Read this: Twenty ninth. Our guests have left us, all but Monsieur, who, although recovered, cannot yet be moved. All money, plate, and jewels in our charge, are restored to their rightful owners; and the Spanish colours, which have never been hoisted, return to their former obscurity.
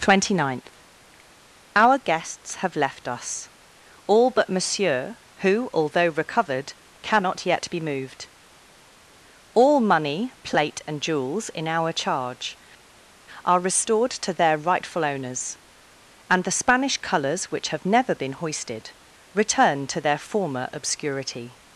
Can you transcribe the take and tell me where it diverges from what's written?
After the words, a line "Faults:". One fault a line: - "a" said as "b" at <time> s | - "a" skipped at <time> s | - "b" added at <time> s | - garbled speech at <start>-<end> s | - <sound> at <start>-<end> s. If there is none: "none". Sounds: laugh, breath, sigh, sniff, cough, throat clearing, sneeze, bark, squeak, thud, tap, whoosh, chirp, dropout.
Twenty ninth. Our guests have left us, all but Monsieur, who, although recovered, cannot yet be moved. All money, plate, and jewels in our charge, are restored to their rightful owners; and the Spanish colours, which have never been hoisted, return to their former obscurity.
Faults:
none